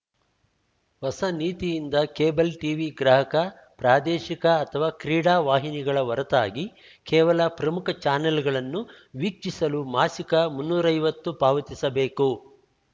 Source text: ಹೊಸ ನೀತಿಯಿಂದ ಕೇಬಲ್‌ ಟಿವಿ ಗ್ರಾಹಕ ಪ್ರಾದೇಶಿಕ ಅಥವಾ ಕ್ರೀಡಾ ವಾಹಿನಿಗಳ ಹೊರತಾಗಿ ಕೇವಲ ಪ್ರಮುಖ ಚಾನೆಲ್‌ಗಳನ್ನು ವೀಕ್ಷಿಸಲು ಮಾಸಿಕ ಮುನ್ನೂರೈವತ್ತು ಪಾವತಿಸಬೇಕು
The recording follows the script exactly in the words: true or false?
true